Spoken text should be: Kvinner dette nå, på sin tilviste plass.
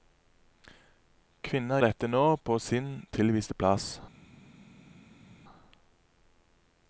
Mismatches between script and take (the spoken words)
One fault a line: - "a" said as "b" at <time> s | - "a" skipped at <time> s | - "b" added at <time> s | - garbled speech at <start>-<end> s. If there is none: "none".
none